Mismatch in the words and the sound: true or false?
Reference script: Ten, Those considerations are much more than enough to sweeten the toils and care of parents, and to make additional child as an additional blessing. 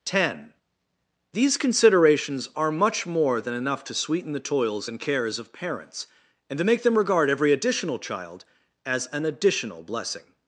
true